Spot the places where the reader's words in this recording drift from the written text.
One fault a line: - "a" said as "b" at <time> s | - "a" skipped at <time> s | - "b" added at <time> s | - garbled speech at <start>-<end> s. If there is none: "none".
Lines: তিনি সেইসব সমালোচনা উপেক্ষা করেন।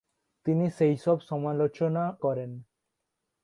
- "উপেক্ষা" skipped at 2.0 s